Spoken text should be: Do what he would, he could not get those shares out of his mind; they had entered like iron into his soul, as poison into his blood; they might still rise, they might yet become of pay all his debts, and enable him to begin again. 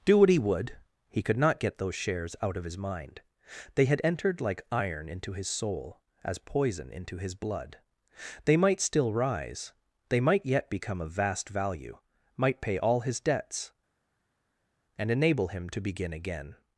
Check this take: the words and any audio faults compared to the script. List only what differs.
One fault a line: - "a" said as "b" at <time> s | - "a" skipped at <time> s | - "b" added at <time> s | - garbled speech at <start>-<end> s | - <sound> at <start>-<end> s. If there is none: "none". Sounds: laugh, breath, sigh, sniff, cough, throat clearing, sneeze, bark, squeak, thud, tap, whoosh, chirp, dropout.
- "vast value might" added at 11.1 s